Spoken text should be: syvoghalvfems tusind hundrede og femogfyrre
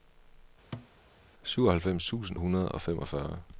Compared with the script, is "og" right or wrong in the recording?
right